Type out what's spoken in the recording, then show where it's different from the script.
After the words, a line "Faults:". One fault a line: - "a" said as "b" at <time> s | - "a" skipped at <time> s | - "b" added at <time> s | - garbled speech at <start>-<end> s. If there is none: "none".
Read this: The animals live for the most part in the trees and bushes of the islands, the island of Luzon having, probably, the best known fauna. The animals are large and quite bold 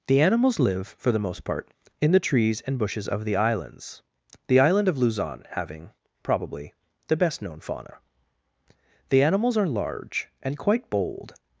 The animals live for the most part in the trees and bushes of the islands, the island of Luzon having, probably, the best known fauna. The animals are large and quite bold
Faults:
none